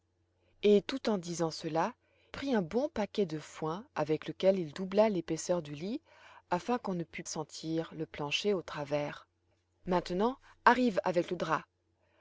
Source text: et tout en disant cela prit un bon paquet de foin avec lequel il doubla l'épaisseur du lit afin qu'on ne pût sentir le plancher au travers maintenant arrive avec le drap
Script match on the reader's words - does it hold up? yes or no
yes